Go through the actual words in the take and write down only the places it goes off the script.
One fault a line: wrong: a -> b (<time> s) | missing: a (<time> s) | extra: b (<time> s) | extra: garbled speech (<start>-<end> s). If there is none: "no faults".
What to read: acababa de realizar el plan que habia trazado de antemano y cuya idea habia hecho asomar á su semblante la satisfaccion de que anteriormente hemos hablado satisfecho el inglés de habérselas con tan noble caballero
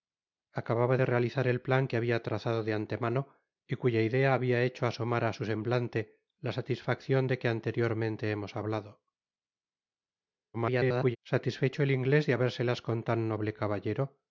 extra: garbled speech (10.5-11.2 s)